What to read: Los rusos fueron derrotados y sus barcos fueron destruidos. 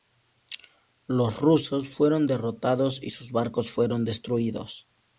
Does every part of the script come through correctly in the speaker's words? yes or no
yes